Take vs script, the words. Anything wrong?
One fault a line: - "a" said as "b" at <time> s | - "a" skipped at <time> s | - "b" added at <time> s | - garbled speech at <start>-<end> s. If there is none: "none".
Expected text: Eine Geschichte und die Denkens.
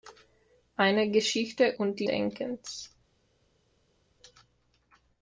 none